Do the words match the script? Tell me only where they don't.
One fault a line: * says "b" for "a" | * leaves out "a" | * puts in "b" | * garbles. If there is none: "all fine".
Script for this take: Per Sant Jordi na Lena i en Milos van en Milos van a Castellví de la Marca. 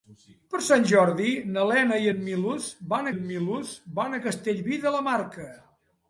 all fine